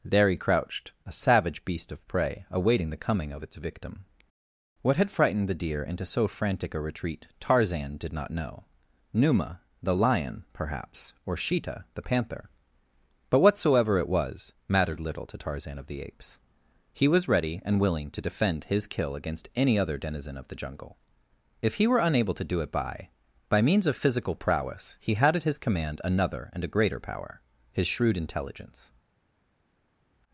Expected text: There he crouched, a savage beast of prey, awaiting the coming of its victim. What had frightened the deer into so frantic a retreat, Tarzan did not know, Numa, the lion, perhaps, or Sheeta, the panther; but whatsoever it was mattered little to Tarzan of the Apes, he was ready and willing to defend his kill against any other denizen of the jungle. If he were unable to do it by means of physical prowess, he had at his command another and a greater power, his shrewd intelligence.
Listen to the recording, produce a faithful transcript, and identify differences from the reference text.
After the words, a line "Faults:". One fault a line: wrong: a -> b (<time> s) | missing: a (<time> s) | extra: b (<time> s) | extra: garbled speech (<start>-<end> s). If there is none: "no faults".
There he crouched, a savage beast of prey, awaiting the coming of its victim. What had frightened the deer into so frantic a retreat, Tarzan did not know, Numa, the lion, perhaps, or Sheeta, the panther; but whatsoever it was mattered little to Tarzan of the Apes, he was ready and willing to defend his kill against any other denizen of the jungle. If he were unable to do it by by means of physical prowess, he had at his command another and a greater power, his shrewd intelligence.
Faults:
extra: by (23.5 s)